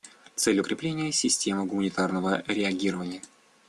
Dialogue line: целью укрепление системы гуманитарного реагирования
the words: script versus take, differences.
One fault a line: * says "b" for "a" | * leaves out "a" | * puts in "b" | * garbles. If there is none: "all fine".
all fine